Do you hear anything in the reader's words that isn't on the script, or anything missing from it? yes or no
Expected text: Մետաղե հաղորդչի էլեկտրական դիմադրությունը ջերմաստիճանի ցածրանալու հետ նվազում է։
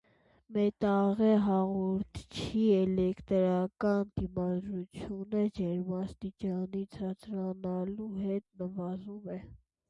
no